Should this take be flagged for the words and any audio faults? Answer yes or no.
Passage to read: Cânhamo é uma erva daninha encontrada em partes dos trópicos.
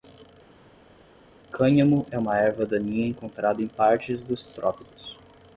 no